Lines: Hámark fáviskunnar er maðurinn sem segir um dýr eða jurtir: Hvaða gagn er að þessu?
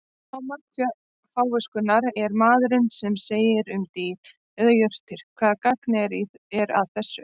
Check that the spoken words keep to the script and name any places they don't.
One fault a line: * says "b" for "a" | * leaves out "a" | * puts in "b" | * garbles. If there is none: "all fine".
all fine